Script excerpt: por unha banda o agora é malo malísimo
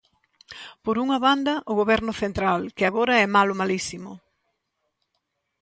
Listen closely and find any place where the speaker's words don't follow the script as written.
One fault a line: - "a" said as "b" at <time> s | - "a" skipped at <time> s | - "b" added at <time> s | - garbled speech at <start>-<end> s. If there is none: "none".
- "goberno central que" added at 1.8 s